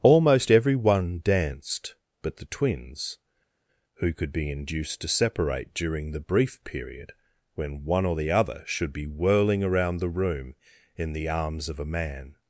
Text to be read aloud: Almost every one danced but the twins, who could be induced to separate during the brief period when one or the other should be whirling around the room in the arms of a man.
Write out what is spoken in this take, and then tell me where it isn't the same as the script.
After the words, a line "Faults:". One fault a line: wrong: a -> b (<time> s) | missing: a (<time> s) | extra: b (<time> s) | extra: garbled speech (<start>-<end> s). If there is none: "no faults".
Almost every one danced but the twins, who could be induced to separate during the brief period when one or the other should be whirling around the room in the arms of a man.
Faults:
no faults